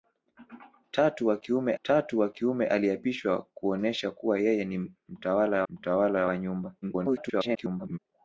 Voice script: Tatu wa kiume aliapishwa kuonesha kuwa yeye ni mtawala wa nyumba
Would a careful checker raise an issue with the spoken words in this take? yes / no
yes